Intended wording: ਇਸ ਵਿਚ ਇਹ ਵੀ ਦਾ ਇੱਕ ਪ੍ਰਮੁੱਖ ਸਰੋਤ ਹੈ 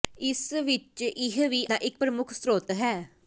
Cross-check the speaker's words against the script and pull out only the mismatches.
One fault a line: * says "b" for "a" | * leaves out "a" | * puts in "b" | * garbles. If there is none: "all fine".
all fine